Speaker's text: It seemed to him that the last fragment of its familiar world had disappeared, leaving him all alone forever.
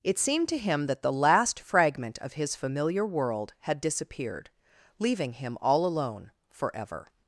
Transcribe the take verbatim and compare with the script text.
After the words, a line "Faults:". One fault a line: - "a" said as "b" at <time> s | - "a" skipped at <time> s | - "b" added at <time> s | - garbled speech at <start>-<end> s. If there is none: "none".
It seemed to him that the last fragment of his familiar world had disappeared, leaving him all alone forever.
Faults:
- "its" said as "his" at 2.3 s